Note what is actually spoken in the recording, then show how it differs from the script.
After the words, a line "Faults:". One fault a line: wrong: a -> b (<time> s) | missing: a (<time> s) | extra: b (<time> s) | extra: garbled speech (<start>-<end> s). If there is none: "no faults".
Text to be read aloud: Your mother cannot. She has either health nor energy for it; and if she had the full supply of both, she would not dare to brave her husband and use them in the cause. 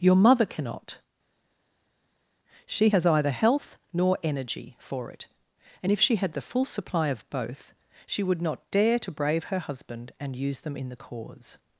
Your mother cannot. She has either health nor energy for it; and if she had the full supply of both, she would not dare to brave her husband and use them in the cause.
Faults:
no faults